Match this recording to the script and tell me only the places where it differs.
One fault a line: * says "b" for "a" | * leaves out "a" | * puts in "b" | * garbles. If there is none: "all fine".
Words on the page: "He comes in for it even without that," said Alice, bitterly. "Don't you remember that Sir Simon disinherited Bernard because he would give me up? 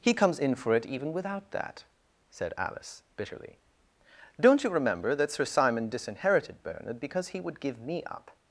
all fine